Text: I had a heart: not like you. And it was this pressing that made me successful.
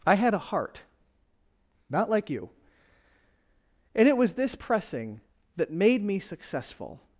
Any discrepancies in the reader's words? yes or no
no